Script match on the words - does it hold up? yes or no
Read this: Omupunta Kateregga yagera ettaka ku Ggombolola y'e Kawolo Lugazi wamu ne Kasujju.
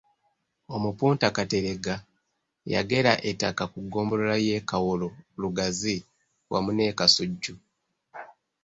yes